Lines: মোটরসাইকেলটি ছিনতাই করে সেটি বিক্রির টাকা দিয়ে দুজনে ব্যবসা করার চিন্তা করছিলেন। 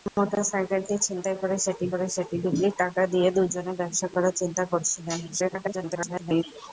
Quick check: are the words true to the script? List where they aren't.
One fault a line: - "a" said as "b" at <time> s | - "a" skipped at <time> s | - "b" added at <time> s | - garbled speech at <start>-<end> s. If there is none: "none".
- "করে সেটি" added at 1.9 s
- garbled speech at 5.3-6.4 s